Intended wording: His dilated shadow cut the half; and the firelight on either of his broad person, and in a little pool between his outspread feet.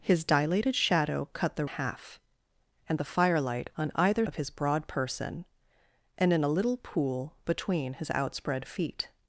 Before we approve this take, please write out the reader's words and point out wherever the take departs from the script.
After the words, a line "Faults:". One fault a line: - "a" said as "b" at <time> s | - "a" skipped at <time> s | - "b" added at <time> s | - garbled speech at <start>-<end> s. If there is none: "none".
His dilated shadow cut the half; and the firelight on either of his broad person, and in a little pool between his outspread feet.
Faults:
none